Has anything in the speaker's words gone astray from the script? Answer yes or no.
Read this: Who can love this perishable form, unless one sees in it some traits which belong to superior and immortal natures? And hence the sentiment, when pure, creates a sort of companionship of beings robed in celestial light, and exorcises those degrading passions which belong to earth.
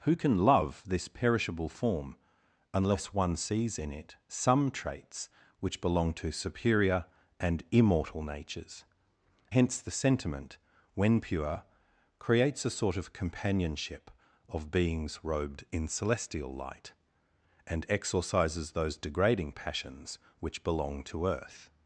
yes